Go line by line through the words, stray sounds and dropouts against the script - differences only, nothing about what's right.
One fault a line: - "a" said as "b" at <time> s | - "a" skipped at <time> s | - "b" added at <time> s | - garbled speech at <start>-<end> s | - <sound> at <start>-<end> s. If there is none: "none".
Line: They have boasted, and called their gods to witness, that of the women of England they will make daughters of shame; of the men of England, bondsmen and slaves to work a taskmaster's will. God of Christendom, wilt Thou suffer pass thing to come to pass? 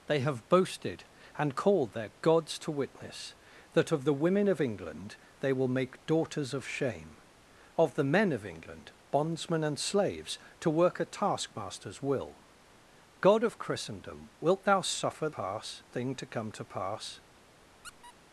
- squeak at 17.8-18.1 s